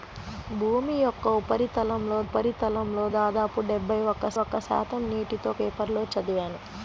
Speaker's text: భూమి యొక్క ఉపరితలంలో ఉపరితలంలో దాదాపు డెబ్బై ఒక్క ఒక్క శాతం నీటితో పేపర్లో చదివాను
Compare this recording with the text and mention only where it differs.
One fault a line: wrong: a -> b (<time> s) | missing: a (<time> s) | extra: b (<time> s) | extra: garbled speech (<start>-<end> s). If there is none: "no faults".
no faults